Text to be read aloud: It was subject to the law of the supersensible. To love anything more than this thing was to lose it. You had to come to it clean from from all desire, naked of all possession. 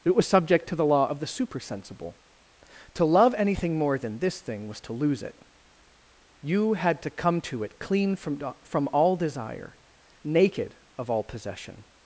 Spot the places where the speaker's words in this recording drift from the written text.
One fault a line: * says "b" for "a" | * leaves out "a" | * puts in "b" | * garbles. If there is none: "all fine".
all fine